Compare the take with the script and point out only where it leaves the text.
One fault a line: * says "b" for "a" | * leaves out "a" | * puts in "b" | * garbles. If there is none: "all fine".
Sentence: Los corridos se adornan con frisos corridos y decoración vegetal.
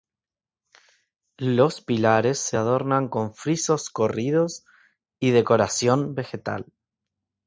* says "pilares" for "corridos"